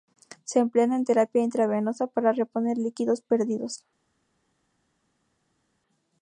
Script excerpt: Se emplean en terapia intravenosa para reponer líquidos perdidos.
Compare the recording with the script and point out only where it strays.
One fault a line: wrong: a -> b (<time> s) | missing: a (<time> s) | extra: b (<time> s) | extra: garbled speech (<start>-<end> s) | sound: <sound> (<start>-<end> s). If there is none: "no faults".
no faults